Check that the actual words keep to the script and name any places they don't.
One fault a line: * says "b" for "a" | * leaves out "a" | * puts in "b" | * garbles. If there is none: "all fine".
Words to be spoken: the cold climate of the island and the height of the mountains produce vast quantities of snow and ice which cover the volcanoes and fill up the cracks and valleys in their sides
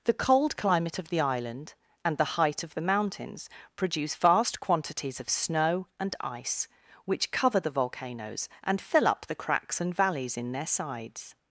all fine